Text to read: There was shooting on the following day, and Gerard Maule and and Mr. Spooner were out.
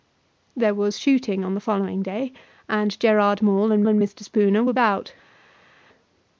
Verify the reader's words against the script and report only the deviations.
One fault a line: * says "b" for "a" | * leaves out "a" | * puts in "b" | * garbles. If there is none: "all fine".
all fine